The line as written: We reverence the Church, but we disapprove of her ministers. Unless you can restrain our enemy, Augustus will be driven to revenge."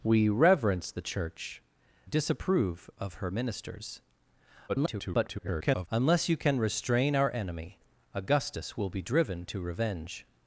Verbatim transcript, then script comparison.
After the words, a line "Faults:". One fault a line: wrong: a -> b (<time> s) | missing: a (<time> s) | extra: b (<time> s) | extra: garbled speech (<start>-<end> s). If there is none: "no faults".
We reverence the Church, disapprove of her ministers. [garbled] Unless you can restrain our enemy, Augustus will be driven to revenge."
Faults:
missing: but we (1.6 s)
extra: garbled speech (4.7-5.9 s)